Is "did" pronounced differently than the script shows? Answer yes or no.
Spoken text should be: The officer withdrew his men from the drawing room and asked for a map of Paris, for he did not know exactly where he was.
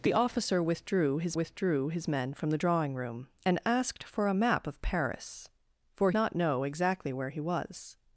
yes